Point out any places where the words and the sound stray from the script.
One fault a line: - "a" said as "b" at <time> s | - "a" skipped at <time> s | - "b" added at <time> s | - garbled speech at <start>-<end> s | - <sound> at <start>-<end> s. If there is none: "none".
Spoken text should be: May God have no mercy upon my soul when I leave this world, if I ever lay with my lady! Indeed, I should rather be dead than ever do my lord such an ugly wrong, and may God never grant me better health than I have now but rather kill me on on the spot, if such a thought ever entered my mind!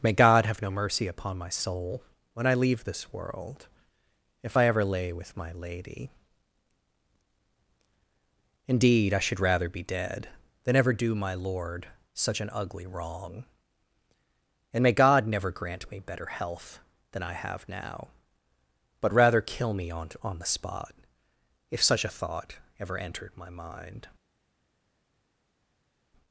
none